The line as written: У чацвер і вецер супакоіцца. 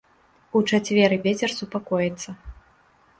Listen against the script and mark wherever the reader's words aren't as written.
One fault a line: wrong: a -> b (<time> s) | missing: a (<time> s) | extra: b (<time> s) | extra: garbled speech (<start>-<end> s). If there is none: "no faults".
no faults